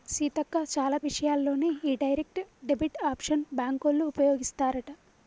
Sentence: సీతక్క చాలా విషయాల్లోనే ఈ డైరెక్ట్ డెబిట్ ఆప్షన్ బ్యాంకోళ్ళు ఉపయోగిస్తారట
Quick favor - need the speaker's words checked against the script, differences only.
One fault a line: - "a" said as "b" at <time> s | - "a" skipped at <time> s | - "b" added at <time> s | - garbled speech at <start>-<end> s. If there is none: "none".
none